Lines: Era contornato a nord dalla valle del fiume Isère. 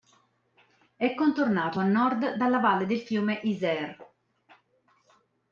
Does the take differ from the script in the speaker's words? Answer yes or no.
yes